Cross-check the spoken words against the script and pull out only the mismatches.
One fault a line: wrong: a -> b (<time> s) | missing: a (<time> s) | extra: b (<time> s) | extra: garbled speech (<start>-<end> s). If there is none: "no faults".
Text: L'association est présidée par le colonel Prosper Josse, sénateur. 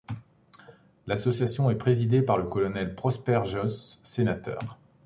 no faults